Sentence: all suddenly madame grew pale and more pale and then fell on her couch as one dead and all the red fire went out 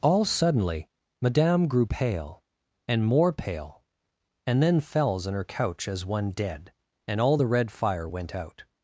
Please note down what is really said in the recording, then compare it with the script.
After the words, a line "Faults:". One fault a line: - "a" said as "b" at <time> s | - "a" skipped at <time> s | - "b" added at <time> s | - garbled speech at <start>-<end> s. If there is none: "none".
all suddenly madame grew pale and more pale and then fells on her couch as one dead and all the red fire went out
Faults:
- "fell" said as "fells" at 4.8 s